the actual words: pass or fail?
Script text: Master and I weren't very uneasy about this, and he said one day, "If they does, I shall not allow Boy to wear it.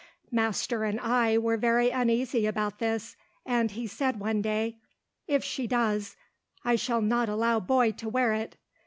fail